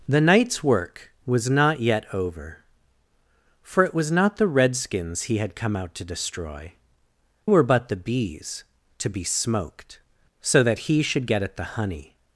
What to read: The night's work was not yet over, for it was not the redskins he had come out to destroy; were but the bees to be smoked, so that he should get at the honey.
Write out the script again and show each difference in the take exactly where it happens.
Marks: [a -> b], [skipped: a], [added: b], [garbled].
The night's work was not yet over, for it was not the redskins he had come out to destroy; were but the bees to be smoked, so that he should get at the honey.